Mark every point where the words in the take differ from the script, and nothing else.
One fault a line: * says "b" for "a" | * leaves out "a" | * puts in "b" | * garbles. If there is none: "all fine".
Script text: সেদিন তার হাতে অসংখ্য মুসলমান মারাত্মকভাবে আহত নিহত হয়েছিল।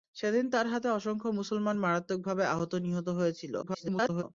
* garbles